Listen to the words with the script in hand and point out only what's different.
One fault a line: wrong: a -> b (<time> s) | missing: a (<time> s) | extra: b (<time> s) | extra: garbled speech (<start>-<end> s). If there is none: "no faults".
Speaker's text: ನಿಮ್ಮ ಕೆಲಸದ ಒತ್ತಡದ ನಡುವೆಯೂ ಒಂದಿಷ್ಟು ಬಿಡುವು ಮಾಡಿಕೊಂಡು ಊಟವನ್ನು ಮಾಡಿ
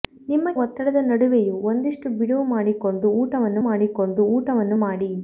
missing: ಕೆಲಸದ (0.5 s)
extra: ಮಾಡಿಕೊಂಡು ಊಟವನ್ನು (3.7 s)